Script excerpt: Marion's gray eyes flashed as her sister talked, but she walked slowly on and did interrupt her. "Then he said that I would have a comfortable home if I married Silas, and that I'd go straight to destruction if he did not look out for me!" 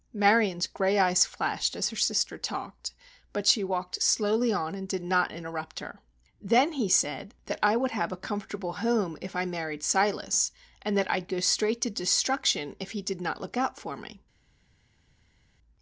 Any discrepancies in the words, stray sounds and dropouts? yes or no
yes